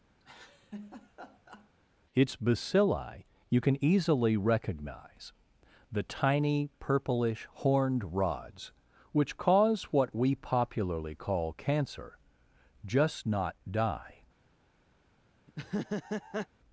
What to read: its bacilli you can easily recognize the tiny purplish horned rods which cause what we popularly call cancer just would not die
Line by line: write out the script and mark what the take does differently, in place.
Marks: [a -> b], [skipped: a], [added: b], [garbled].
its bacilli you can easily recognize the tiny purplish horned rods which cause what we popularly call cancer just [skipped: would] not die